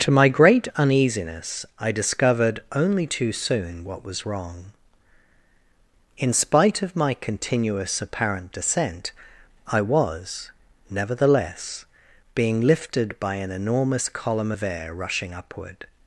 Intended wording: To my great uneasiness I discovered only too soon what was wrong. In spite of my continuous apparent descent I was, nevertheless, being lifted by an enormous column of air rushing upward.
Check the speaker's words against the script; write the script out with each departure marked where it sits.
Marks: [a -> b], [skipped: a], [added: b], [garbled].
To my great uneasiness I discovered only too soon what was wrong. In spite of my continuous apparent descent I was, nevertheless, being lifted by an enormous column of air rushing upward.